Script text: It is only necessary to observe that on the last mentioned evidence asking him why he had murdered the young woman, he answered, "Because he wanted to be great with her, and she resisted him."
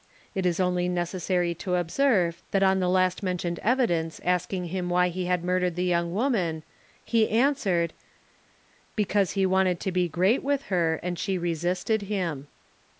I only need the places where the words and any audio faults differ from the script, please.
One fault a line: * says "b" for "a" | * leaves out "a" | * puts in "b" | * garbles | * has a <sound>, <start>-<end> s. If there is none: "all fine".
all fine